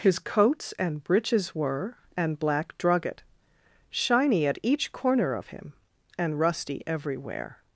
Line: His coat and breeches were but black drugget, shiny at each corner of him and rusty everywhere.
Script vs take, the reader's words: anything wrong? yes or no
yes